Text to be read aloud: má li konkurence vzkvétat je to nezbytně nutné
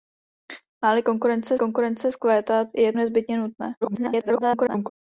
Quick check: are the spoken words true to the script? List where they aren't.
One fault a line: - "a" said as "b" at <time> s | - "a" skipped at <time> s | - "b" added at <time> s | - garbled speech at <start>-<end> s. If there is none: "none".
- "konkurence" added at 1.6 s
- "to" skipped at 2.9 s
- garbled speech at 3.8-4.9 s